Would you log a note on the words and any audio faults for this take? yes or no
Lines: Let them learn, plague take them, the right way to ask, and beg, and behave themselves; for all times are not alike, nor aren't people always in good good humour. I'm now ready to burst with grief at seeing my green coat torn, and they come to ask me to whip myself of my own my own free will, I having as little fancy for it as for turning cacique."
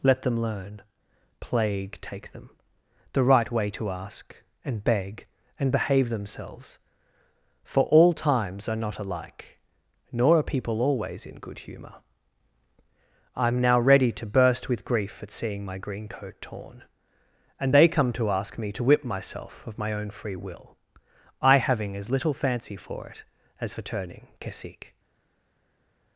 yes